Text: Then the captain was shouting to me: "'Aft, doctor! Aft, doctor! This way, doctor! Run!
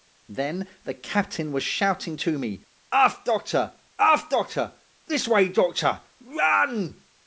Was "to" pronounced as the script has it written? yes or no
yes